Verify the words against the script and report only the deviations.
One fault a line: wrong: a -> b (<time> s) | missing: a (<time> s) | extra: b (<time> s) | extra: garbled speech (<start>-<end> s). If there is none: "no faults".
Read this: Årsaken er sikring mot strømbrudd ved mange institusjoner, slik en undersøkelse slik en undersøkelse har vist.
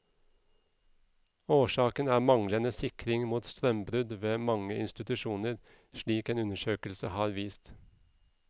extra: manglende (2.3 s)
missing: slik en undersøkelse (7.1 s)